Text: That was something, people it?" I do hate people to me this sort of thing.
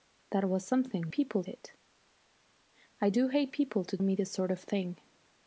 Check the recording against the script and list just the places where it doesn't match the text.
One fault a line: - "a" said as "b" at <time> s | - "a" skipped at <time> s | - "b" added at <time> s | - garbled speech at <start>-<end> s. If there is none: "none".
none